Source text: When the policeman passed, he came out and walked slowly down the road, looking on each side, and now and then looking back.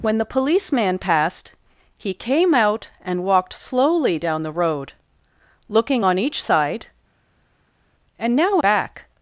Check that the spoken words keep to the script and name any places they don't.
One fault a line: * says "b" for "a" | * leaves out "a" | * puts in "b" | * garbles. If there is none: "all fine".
* leaves out "and then looking"